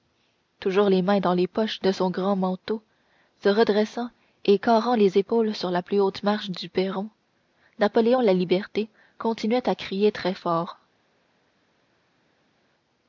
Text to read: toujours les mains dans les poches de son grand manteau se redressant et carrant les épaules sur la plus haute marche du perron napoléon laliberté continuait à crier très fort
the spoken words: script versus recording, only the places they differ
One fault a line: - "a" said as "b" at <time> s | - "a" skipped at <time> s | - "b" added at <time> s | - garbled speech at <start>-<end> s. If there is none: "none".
none